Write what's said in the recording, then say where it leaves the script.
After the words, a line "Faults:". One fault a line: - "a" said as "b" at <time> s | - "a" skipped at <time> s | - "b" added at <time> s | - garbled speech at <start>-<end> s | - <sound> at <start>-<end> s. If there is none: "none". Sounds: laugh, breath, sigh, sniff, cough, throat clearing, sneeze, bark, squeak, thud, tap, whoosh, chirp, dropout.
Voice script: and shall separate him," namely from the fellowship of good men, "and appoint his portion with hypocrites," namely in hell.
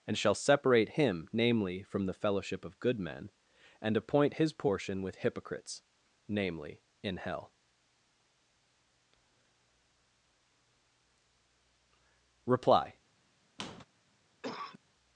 and shall separate him," namely from the fellowship of good men, "and appoint his portion with hypocrites," namely in hell. Reply
Faults:
- "Reply" added at 12.5 s
- squeak at 13.6-13.8 s
- cough at 14.4-14.8 s